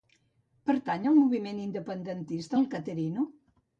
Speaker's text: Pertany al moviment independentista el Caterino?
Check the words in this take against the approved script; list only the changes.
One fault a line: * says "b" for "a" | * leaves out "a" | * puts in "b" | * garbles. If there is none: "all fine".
all fine